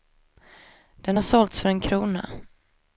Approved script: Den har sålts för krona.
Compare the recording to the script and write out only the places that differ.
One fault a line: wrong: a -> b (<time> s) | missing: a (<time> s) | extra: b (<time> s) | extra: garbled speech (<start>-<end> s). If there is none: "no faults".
extra: en (1.7 s)